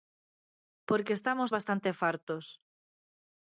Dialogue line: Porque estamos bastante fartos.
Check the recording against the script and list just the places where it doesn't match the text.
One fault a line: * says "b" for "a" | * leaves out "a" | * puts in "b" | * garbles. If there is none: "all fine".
all fine